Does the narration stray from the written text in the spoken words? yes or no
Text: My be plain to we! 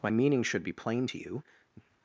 yes